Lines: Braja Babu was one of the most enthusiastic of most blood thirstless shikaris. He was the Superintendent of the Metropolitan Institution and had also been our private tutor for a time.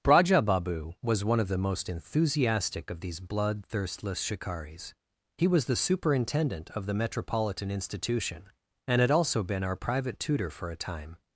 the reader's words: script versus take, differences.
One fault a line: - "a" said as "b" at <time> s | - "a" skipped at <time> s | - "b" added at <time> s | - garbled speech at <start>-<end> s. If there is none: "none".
- "most" said as "these" at 3.0 s